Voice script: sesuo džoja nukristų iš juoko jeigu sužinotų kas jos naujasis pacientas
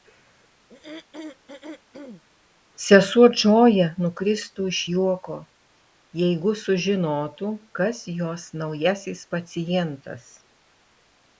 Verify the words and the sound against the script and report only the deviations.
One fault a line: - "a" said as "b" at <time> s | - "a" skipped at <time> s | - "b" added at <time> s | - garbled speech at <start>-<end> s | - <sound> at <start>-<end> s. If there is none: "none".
- throat clearing at 0.7-2.2 s